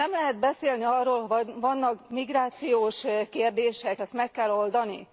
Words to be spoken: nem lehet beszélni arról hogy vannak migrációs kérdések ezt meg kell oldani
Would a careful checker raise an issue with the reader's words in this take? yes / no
no